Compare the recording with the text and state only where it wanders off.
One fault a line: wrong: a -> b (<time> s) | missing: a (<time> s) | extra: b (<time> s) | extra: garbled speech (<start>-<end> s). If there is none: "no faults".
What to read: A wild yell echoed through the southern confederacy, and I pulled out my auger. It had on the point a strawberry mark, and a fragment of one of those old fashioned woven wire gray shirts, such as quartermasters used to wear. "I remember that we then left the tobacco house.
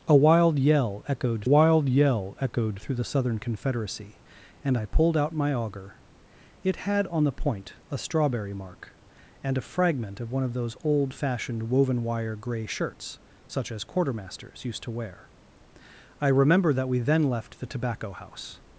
extra: wild yell echoed (1.4 s)